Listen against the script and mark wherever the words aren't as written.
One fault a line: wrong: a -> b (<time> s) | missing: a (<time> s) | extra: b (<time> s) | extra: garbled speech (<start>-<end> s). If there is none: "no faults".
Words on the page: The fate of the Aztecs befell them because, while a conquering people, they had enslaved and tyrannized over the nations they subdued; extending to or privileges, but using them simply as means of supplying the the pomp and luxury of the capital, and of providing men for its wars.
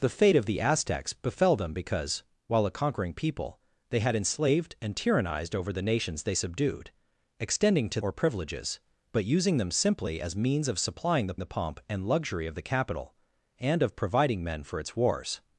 no faults